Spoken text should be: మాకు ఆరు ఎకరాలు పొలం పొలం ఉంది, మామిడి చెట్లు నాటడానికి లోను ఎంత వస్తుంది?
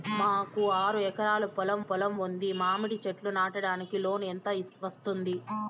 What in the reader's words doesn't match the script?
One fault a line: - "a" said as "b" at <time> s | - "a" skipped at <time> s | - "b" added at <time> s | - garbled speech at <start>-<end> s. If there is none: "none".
none